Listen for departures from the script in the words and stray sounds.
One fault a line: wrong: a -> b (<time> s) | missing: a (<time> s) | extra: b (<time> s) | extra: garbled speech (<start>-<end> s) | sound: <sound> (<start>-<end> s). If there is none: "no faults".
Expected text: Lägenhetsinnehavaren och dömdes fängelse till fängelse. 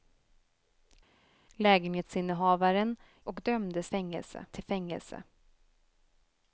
no faults